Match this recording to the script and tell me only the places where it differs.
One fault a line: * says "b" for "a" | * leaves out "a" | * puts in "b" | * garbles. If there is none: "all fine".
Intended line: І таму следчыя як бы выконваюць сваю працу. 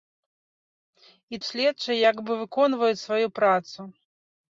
* leaves out "таму"